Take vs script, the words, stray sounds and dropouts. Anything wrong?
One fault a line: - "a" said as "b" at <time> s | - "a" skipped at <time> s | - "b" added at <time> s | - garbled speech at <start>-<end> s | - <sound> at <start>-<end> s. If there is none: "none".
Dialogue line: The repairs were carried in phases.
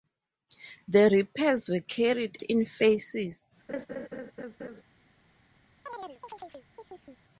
- laugh at 3.7-4.8 s
- chirp at 5.9-7.2 s